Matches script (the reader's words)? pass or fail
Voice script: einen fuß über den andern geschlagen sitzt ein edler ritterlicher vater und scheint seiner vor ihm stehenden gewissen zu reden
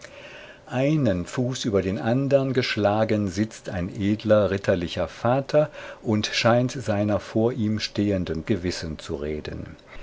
pass